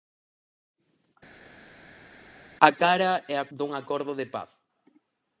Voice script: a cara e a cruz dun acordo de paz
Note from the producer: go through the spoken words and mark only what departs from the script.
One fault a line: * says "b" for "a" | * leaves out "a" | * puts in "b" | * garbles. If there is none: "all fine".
* leaves out "cruz"